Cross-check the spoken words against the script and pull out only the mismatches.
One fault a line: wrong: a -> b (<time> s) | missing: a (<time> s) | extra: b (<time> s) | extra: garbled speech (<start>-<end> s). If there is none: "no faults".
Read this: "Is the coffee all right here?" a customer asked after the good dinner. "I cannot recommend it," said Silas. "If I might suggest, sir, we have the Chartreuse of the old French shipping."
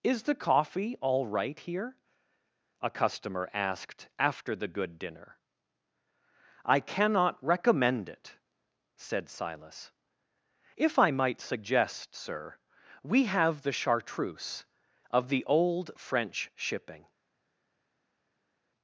no faults